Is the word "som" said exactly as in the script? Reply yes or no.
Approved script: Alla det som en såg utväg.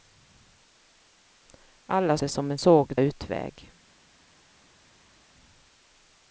yes